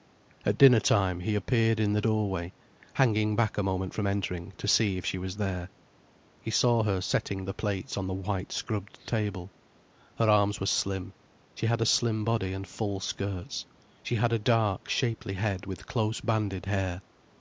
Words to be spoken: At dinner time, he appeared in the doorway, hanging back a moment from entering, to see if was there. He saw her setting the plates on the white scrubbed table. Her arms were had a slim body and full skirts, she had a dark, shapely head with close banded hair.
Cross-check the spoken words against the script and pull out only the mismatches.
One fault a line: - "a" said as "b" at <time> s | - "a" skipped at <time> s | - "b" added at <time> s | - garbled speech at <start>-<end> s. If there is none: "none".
- "she" added at 5.0 s
- "slim she" added at 10.7 s